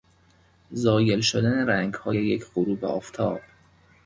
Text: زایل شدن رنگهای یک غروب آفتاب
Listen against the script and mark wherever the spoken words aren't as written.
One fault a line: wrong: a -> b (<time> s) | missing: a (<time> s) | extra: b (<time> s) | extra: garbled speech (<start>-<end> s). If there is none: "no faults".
no faults